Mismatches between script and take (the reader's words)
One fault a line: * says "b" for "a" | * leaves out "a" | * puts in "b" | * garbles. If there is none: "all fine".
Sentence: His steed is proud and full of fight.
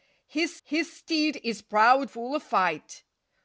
* puts in "his"
* leaves out "and"